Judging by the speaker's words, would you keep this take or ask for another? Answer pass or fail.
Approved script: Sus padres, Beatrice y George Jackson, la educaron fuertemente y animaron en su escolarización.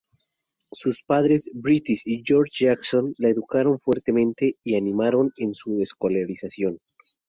pass